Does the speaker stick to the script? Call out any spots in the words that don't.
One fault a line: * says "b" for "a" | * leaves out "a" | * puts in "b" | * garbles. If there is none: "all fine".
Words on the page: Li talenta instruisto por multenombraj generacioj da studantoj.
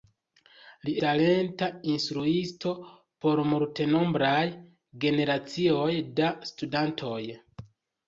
all fine